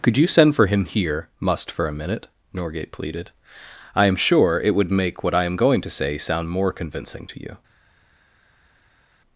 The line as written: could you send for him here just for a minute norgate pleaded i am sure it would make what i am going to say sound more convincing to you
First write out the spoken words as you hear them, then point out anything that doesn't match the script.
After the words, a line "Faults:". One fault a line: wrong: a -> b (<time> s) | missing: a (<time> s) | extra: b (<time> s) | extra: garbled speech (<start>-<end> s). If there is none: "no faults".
could you send for him here must for a minute norgate pleaded i am sure it would make what i am going to say sound more convincing to you
Faults:
wrong: just -> must (1.4 s)